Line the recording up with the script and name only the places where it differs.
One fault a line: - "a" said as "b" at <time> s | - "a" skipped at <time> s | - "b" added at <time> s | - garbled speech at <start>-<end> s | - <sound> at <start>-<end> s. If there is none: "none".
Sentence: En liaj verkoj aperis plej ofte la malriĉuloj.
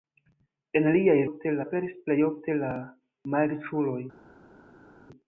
- "verkoj" said as "ofte" at 1.3 s